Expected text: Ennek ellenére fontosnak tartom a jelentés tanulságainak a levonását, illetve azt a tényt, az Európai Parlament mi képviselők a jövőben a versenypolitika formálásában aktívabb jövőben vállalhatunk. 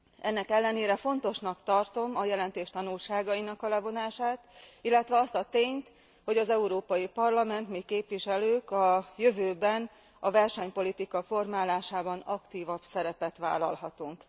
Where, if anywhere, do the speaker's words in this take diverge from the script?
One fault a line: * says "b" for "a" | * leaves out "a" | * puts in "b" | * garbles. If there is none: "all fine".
* puts in "hogy"
* says "szerepet" for "jövőben"